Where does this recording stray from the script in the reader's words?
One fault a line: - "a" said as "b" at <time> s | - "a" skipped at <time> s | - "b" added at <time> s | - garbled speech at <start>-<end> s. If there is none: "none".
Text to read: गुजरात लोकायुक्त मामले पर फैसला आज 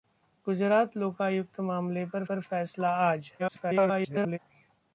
- "पर" added at 2.3 s
- garbled speech at 3.4-4.4 s